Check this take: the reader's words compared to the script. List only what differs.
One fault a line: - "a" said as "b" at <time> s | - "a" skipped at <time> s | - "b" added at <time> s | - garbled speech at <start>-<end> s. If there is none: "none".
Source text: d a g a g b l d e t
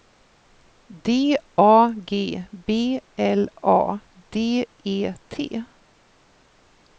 - "a g" skipped at 2.4 s
- "a" added at 3.6 s